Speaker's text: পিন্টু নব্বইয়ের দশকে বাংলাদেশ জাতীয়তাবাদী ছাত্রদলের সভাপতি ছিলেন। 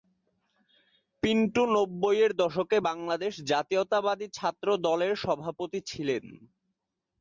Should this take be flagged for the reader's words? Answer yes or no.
no